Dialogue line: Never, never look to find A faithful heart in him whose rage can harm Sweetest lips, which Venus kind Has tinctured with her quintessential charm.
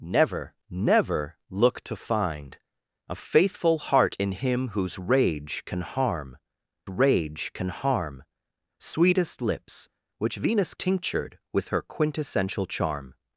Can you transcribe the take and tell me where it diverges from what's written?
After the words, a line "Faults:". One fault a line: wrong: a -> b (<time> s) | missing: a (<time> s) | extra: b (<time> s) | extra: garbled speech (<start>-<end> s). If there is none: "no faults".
Never, never look to find A faithful heart in him whose rage can harm rage can harm Sweetest lips, which Venus tinctured with her quintessential charm.
Faults:
extra: rage can harm (6.9 s)
missing: kind Has (10.7 s)